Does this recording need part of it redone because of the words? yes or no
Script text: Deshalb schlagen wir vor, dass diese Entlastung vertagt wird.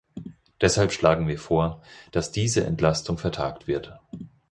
no